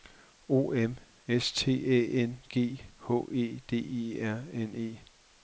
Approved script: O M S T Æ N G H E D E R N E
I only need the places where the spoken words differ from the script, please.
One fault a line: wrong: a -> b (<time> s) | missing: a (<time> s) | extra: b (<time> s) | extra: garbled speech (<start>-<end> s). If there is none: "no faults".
no faults